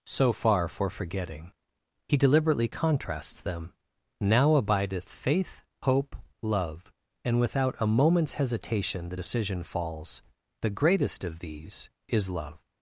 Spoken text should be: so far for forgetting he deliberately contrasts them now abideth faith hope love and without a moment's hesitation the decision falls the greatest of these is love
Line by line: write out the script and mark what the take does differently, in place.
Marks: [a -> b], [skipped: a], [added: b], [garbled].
so far for forgetting he deliberately contrasts them now abideth faith hope love and without a moment's hesitation the decision falls the greatest of these is love